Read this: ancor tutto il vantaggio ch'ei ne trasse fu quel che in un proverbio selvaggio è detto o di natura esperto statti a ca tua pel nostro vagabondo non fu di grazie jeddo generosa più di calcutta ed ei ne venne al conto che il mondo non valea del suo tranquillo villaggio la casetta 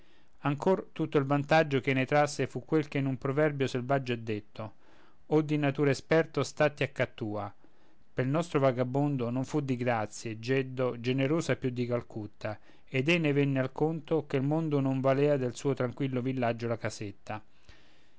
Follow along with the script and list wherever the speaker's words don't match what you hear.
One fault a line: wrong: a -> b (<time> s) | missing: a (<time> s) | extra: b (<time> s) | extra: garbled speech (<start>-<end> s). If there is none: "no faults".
no faults